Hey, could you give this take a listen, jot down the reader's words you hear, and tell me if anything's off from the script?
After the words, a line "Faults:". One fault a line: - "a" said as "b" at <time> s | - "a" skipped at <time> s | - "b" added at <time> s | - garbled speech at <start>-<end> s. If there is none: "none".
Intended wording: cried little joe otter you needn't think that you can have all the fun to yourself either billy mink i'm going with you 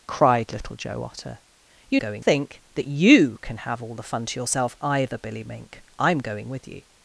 cried little joe otter you going think that you can have all the fun to yourself either billy mink i'm going with you
Faults:
- "needn't" said as "going" at 1.9 s